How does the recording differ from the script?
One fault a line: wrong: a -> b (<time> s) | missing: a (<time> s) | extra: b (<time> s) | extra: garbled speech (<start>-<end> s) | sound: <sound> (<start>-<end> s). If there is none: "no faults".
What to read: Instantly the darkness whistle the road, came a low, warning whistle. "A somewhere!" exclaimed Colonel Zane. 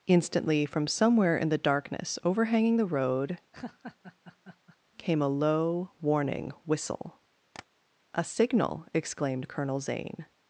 extra: from somewhere in (0.7 s)
wrong: whistle -> overhanging (2.2 s)
sound: laugh (3.5-4.8 s)
sound: tap (7.5-7.7 s)
wrong: somewhere -> signal (8.2 s)